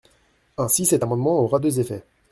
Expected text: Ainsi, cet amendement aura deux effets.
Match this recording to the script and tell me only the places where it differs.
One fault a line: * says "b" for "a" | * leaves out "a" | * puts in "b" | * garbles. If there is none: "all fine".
all fine